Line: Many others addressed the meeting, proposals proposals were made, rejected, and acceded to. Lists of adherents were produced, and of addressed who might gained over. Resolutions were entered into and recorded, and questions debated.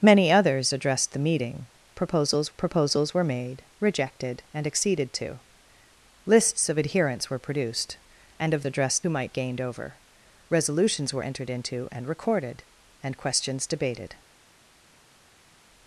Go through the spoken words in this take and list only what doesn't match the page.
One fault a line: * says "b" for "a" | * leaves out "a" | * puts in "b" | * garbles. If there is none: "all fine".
all fine